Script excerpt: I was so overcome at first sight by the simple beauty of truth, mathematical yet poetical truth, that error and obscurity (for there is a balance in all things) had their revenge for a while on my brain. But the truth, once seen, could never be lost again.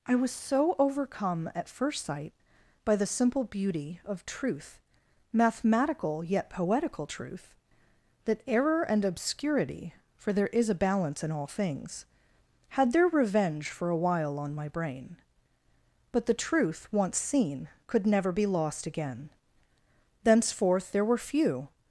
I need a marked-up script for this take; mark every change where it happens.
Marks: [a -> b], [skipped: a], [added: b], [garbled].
I was so overcome at first sight by the simple beauty of truth, mathematical yet poetical truth, that error and obscurity (for there is a balance in all things) had their revenge for a while on my brain. But the truth, once seen, could never be lost again. [added: Thenceforth there were few]